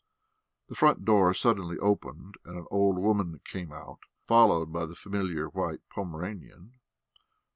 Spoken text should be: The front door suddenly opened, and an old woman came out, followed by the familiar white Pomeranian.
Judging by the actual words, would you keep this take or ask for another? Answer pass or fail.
pass